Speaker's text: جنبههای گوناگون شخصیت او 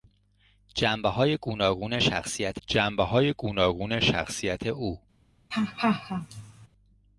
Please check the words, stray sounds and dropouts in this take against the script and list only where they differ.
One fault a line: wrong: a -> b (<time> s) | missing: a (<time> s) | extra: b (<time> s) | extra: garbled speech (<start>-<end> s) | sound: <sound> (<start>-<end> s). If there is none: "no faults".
extra: جنبههای گوناگون شخصیت (2.7 s)
sound: laugh (5.5-6.7 s)